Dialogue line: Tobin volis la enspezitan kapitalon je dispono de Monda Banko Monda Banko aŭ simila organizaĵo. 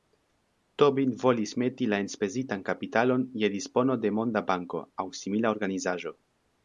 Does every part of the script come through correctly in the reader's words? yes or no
no